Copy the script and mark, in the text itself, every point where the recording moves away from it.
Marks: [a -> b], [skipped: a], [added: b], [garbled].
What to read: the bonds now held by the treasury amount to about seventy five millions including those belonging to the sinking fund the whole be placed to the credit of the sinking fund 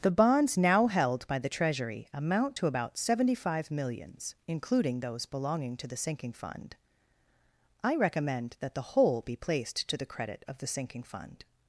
the bonds now held by the treasury amount to about seventy five millions including those belonging to the sinking fund [added: i recommend that] the whole be placed to the credit of the sinking fund